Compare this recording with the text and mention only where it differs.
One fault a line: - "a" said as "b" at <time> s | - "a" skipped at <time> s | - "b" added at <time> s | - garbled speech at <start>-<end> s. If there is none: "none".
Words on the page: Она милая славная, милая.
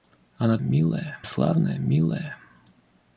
none